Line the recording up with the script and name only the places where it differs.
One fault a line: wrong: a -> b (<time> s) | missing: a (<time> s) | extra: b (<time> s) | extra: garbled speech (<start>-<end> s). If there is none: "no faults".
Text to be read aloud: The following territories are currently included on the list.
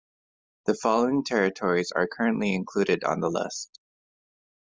no faults